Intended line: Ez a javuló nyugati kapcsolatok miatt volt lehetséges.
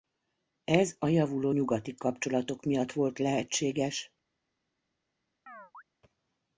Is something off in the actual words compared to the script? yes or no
no